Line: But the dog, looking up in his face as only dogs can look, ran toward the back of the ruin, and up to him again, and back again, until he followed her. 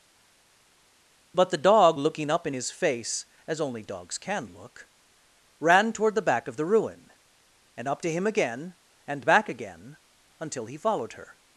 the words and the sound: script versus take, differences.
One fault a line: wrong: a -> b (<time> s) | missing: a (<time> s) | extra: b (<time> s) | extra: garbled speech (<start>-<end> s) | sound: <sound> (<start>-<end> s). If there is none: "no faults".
no faults